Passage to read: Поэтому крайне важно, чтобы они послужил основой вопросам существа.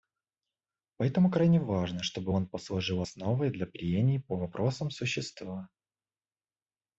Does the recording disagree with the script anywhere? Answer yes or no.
yes